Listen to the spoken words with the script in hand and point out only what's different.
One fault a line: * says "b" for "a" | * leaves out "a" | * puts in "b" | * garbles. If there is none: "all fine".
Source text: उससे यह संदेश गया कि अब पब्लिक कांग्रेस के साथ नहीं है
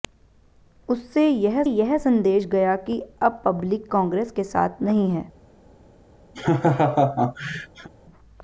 * puts in "यह"